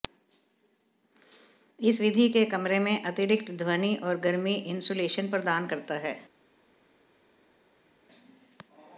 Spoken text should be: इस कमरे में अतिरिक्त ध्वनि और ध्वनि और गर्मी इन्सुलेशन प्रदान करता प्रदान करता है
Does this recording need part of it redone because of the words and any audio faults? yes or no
yes